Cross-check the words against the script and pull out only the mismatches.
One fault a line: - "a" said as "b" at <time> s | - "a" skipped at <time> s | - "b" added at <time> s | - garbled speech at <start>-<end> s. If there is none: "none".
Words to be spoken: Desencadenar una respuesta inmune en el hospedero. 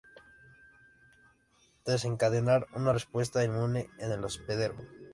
none